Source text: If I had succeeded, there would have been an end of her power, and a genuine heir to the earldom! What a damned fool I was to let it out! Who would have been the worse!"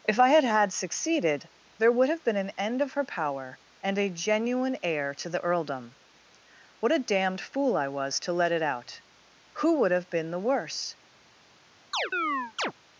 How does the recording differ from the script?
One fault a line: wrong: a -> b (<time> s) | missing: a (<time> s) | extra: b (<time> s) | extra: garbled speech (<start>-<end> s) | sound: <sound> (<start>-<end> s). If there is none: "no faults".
extra: had (0.4 s)
sound: chirp (11.9-12.7 s)